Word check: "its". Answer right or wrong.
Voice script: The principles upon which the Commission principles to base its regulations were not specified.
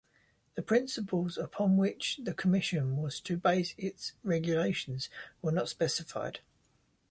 right